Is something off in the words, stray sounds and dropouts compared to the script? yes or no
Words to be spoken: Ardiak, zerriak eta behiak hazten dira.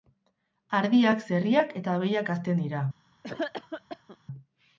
yes